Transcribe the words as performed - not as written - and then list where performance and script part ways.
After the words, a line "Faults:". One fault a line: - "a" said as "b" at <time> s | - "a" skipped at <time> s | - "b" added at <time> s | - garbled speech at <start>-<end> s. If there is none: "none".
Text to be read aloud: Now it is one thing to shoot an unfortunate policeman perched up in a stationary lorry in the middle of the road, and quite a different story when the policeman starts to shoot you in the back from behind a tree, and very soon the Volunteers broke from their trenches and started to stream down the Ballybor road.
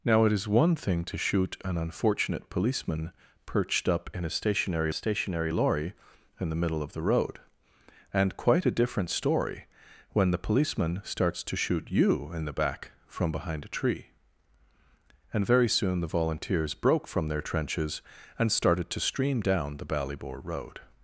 Now it is one thing to shoot an unfortunate policeman perched up in a stationary stationary lorry in the middle of the road, and quite a different story when the policeman starts to shoot you in the back from behind a tree, and very soon the Volunteers broke from their trenches and started to stream down the Ballybor road.
Faults:
- "stationary" added at 4.9 s